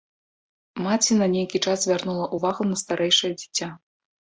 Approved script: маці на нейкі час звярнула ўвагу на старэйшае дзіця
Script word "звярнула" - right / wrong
right